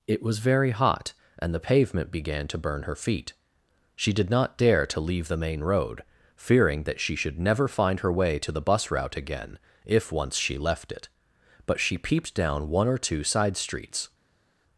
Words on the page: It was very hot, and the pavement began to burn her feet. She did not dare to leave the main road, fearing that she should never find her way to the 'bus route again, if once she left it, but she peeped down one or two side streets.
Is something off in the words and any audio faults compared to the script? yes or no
no